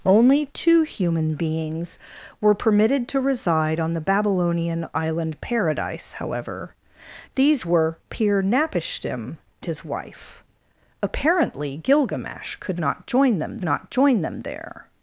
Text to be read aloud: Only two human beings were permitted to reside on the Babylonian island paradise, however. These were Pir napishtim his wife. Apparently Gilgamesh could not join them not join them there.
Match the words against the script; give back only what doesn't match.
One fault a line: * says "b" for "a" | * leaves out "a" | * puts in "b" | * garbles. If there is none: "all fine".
all fine